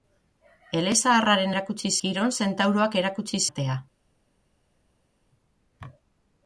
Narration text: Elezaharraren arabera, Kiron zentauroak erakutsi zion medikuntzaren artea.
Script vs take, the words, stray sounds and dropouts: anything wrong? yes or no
yes